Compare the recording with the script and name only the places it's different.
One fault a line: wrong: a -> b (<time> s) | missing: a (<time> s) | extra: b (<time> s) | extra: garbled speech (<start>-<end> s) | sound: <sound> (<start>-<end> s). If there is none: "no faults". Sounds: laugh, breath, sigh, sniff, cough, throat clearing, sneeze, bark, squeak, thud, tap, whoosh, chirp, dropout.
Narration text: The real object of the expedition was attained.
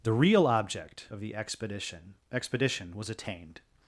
extra: expedition (2.3 s)